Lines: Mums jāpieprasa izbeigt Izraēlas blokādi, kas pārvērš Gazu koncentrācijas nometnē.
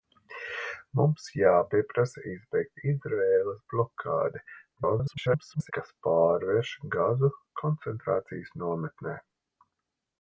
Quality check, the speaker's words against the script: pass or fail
fail